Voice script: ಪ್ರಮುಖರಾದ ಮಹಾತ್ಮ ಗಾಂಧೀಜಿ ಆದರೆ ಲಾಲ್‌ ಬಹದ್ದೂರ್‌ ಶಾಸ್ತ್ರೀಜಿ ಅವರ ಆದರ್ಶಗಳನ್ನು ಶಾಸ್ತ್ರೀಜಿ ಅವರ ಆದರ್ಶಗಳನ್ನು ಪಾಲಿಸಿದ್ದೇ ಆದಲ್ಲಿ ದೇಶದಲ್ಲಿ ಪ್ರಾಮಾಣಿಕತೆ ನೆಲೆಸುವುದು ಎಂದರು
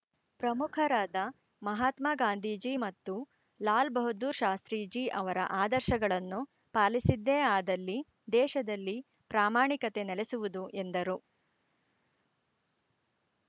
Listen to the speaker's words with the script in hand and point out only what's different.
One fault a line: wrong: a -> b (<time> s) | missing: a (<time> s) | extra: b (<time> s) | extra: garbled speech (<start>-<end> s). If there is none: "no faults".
wrong: ಆದರೆ -> ಮತ್ತು (2.8 s)
missing: ಶಾಸ್ತ್ರೀಜಿ ಅವರ ಆದರ್ಶಗಳನ್ನು (6.4 s)